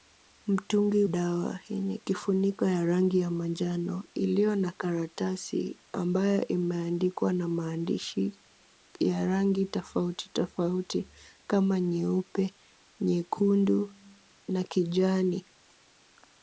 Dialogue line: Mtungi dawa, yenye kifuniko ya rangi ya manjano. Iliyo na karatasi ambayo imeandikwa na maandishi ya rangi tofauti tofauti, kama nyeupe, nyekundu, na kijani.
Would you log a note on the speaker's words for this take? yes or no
no